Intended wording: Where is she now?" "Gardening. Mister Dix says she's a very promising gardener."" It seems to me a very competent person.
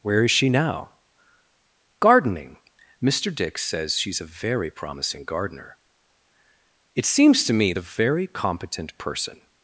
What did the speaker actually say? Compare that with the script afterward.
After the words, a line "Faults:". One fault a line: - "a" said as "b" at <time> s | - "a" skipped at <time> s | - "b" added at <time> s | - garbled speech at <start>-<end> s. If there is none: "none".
Where is she now?" "Gardening. Mister Dix says she's a very promising gardener."" It seems to me a very competent person.
Faults:
none